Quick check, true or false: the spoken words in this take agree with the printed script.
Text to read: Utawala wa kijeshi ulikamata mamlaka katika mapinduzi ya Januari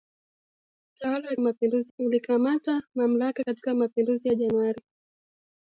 false